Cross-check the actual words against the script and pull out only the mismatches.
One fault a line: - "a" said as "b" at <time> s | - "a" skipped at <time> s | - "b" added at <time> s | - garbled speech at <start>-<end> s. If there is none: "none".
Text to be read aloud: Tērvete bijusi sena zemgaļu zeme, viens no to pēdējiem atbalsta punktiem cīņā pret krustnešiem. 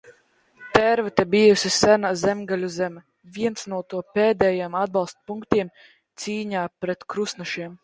none